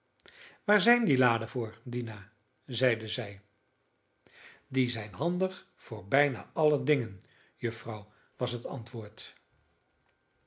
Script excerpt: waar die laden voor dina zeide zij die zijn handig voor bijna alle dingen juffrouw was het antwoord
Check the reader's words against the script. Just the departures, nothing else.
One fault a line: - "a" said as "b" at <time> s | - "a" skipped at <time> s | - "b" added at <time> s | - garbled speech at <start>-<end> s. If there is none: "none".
- "zijn" added at 0.8 s